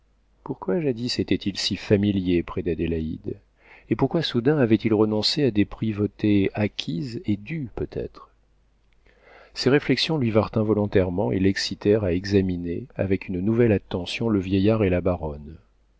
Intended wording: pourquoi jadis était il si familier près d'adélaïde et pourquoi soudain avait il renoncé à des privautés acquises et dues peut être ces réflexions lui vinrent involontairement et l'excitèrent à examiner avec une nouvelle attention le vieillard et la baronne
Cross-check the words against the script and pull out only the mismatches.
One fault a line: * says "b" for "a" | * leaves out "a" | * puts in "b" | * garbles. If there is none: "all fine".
all fine